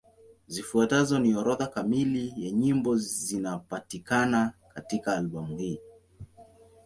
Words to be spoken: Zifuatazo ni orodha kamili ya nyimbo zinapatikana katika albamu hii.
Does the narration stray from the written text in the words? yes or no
no